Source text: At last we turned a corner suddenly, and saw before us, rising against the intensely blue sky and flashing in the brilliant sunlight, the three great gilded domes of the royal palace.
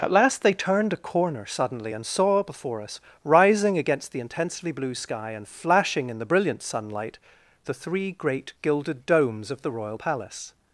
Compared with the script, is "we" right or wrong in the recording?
wrong